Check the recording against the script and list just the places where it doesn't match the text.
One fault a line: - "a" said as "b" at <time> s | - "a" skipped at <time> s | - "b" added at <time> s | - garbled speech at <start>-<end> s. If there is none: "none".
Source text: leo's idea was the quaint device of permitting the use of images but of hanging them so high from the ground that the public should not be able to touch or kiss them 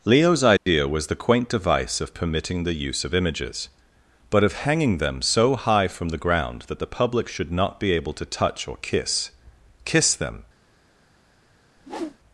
- "kiss" added at 9.9 s